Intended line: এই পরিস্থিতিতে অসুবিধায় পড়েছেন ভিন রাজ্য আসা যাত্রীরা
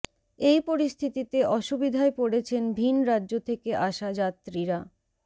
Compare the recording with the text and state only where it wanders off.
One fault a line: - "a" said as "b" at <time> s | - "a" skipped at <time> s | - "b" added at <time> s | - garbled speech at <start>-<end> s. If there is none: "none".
- "থেকে" added at 3.5 s